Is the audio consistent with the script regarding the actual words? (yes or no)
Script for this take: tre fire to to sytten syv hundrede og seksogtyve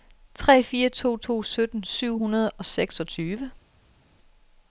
yes